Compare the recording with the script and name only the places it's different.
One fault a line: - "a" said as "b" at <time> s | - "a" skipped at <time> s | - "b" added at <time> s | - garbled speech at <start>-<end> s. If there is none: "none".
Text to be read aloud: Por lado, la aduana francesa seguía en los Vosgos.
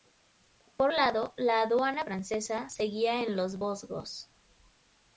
none